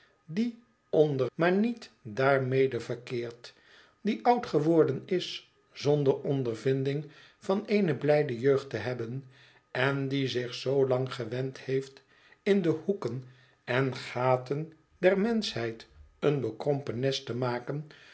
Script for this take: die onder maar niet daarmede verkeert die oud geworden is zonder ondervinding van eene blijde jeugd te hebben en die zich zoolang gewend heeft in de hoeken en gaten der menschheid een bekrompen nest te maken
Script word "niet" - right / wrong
right